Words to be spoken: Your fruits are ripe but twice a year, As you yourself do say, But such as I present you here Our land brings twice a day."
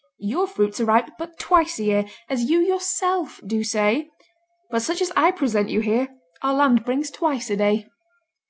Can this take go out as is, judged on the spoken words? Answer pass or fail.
pass